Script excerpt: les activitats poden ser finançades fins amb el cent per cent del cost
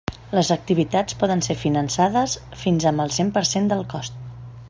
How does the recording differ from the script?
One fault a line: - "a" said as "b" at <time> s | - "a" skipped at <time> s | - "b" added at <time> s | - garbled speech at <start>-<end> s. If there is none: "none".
none